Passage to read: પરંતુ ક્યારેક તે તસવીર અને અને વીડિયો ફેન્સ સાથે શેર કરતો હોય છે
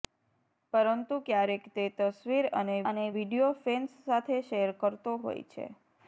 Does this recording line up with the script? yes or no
yes